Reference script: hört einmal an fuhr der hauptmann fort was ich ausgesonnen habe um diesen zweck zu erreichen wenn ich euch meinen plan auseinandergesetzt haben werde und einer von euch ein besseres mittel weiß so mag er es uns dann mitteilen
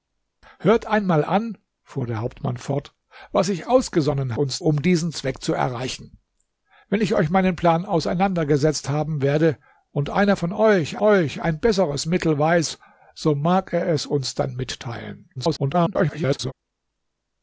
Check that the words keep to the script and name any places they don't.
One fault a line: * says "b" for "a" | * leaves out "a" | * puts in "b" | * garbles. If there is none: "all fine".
* says "uns" for "habe"
* puts in "euch"
* garbles